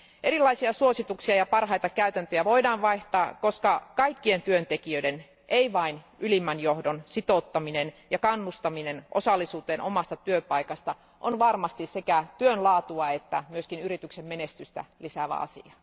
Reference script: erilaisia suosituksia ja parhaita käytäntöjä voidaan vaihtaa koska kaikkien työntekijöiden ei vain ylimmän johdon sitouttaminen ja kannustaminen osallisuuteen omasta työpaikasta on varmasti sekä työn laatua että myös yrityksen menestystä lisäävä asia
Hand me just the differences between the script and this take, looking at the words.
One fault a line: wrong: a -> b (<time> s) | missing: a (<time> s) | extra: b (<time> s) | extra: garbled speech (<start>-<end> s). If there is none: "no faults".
no faults